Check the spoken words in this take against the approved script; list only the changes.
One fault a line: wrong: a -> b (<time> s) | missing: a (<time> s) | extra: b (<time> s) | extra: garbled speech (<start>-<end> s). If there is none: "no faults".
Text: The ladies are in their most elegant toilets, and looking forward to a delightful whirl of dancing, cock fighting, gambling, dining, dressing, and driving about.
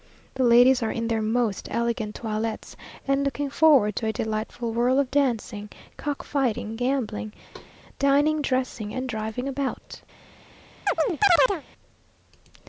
no faults